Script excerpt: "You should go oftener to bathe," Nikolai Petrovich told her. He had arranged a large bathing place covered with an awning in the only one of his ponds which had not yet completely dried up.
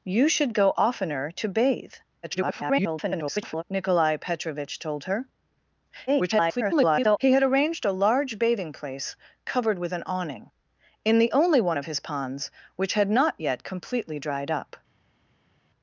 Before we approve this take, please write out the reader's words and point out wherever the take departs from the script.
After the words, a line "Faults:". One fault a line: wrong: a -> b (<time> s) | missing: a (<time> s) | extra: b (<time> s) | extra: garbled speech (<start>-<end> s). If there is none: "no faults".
"You should go oftener to bathe," [garbled] Nikolai Petrovich told her. [garbled] He had arranged a large bathing place covered with an awning in the only one of his ponds which had not yet completely dried up.
Faults:
extra: garbled speech (2.2-3.6 s)
extra: garbled speech (6.1-7.2 s)